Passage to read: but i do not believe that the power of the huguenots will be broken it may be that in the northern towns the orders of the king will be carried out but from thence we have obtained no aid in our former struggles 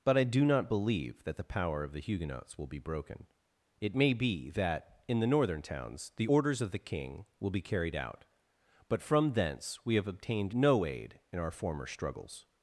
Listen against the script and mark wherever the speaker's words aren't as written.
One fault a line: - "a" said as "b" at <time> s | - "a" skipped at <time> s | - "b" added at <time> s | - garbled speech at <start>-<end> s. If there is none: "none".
none